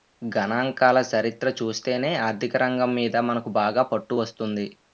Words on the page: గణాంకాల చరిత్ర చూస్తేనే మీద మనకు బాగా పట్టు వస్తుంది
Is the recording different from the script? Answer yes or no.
yes